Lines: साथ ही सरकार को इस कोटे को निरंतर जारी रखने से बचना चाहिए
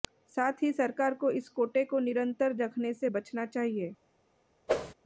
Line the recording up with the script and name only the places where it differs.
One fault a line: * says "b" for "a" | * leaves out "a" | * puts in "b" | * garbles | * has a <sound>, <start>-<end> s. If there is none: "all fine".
* leaves out "जारी"
* has a whoosh, 4.7-4.9 s